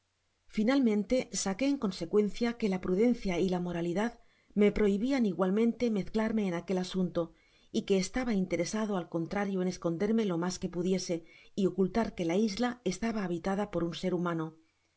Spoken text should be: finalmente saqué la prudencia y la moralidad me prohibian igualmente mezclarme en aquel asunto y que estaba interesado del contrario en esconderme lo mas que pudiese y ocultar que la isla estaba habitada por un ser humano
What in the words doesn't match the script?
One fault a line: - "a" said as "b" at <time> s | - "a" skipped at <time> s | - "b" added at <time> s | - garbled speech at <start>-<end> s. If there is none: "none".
- "en consecuencia que" added at 1.7 s
- "del" said as "al" at 9.0 s